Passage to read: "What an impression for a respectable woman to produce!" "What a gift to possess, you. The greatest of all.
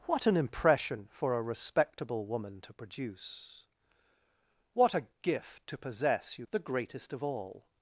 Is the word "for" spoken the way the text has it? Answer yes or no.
yes